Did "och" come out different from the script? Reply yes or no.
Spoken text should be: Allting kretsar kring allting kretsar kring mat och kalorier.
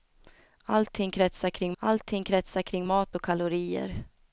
no